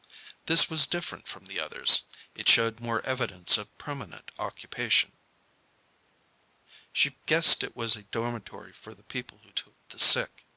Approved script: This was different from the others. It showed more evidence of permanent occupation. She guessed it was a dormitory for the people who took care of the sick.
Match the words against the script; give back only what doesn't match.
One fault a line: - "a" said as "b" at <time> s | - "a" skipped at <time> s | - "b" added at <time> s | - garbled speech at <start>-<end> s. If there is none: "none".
- "care of" skipped at 9.8 s